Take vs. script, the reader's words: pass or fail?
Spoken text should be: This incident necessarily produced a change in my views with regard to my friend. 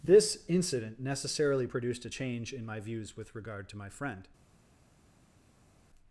pass